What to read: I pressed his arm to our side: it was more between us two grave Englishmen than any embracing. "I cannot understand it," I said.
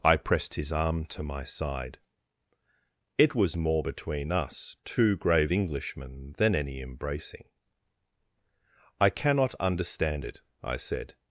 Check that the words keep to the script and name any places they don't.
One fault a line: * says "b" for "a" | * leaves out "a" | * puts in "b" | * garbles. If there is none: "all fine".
* says "my" for "our"